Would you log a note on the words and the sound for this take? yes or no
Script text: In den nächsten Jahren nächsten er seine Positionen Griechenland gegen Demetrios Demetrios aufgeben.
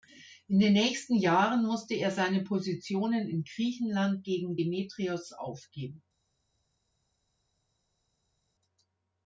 yes